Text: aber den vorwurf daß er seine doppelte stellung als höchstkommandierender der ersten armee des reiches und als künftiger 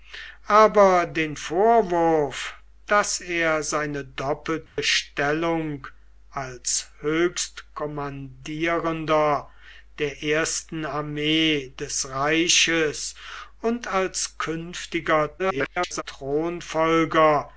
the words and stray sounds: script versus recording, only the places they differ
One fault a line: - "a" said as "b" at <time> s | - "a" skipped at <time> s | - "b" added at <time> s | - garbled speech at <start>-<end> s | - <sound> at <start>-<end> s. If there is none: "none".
- dropout at 4.7-4.8 s
- garbled speech at 15.4-16.0 s